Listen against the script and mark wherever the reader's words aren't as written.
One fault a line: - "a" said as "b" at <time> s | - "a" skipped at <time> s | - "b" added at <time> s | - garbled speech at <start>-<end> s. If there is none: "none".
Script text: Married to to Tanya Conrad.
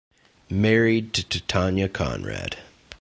none